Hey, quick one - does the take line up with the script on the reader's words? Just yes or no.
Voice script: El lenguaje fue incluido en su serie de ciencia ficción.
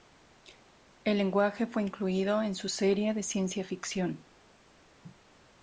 yes